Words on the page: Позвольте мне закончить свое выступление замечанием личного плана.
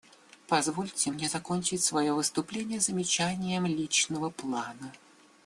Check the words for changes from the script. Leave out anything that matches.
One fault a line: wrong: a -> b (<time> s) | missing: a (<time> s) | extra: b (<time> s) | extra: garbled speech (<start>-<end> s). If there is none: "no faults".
no faults